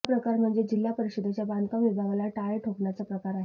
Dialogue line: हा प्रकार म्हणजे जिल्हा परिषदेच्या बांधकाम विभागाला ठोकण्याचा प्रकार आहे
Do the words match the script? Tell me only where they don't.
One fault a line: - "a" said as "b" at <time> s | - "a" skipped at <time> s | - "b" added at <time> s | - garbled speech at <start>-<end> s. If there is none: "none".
- "टाळे" added at 2.3 s